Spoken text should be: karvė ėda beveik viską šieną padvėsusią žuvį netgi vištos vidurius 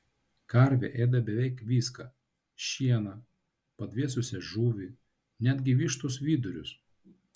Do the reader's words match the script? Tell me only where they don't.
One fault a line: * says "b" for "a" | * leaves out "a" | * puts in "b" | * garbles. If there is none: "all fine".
all fine